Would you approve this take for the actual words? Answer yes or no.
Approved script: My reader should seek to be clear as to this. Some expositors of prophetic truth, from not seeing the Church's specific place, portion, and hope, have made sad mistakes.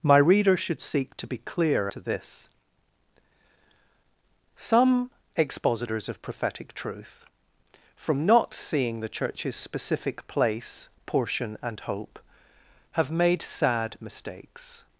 no